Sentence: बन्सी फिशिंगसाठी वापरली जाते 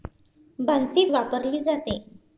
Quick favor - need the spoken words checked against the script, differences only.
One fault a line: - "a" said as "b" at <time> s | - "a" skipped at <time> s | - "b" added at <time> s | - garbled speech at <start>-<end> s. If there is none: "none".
- "फिशिंगसाठी" skipped at 1.0 s